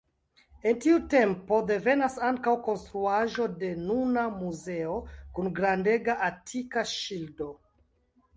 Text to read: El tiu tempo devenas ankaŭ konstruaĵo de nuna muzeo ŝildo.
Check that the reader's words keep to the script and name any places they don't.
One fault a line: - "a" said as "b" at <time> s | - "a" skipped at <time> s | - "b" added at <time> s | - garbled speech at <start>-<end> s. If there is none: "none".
- "kun grandega atika" added at 5.4 s